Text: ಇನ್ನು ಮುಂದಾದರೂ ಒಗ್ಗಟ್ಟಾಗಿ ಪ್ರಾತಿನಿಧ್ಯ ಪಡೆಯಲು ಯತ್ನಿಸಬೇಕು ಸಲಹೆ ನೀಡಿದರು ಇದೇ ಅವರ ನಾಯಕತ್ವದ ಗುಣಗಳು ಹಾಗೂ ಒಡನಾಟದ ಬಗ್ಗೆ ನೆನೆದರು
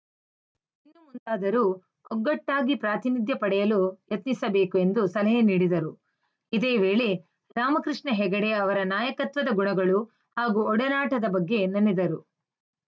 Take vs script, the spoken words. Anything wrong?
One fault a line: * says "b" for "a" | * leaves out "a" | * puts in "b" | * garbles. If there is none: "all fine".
* puts in "ಎಂದು"
* puts in "ವೇಳೆ ರಾಮಕೃಷ್ಣ ಹೆಗಡೆ"